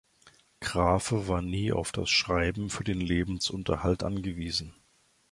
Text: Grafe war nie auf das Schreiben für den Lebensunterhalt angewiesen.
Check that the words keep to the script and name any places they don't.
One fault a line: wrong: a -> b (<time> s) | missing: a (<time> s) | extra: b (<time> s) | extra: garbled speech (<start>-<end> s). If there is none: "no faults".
no faults